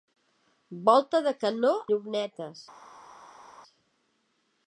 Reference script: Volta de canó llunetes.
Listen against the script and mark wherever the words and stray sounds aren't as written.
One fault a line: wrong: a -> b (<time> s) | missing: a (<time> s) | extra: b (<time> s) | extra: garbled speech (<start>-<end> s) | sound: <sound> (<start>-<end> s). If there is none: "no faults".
no faults